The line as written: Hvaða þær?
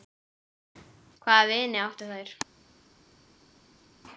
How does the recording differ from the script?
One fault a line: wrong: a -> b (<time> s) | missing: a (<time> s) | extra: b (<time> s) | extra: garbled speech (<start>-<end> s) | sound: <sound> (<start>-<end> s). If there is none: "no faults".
extra: vini áttu (1.5 s)